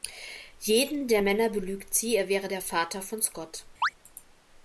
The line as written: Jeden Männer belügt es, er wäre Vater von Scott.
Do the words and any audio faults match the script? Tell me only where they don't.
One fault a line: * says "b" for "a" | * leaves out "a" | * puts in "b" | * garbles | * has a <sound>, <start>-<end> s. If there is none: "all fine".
* puts in "der"
* says "sie" for "es"
* puts in "der"
* has a chirp, 3.8-3.9 s